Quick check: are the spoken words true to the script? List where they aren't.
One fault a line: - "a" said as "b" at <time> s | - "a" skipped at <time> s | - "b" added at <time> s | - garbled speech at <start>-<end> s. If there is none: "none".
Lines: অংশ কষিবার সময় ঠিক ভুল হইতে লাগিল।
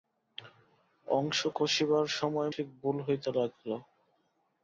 none